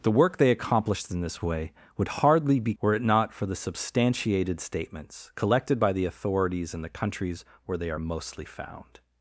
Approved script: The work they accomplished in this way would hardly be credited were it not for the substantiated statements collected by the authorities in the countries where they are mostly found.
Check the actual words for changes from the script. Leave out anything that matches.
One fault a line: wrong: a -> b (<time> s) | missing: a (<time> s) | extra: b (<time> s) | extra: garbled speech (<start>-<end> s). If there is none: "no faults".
missing: credited (2.7 s)